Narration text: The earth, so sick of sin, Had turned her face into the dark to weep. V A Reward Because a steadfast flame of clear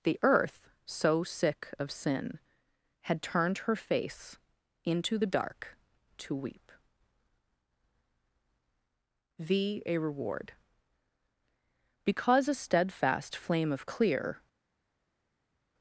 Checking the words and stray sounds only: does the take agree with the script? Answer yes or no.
yes